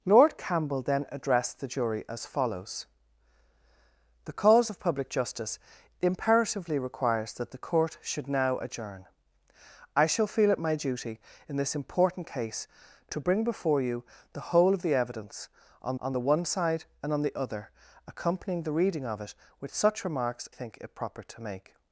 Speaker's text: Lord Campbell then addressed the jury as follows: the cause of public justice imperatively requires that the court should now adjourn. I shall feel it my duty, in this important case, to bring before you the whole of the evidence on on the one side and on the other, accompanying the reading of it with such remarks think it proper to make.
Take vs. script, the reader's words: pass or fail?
pass